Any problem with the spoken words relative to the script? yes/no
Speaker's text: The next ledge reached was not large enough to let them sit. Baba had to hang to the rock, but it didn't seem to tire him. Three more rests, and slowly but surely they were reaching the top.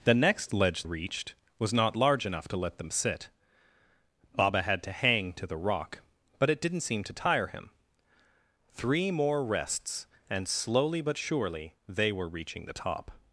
no